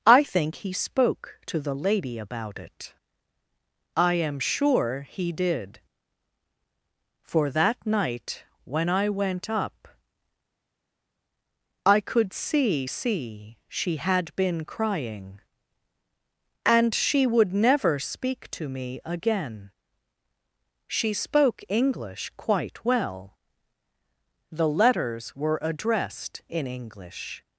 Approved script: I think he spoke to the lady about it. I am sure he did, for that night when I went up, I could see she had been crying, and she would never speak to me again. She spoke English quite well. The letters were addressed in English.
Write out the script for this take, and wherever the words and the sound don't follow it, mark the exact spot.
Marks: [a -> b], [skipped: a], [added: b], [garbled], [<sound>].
I think he spoke to the lady about it. I am sure he did, for that night when I went up, I could see [added: see] she had been crying, and she would never speak to me again. She spoke English quite well. The letters were addressed in English.